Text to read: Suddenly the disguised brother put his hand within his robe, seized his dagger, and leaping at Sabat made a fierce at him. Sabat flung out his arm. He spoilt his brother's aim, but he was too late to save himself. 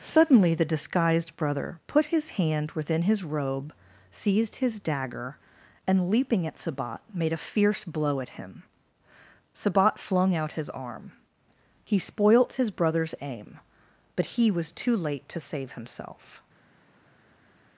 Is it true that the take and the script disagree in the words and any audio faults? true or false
true